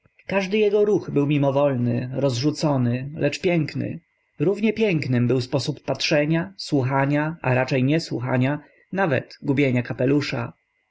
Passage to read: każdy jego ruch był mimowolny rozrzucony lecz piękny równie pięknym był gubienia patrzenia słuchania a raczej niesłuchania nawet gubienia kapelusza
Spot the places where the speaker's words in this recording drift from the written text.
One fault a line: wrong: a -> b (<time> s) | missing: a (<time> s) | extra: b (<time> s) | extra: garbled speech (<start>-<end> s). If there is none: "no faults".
wrong: gubienia -> sposób (5.4 s)